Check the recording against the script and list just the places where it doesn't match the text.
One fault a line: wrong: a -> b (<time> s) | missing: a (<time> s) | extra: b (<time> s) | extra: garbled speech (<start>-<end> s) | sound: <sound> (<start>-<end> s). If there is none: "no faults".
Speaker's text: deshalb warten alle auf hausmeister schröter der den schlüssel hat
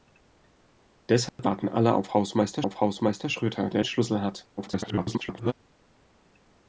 sound: dropout (1.3-1.4 s)
extra: auf hausmeister (2.6 s)
missing: den (3.8 s)
extra: garbled speech (4.6-5.5 s)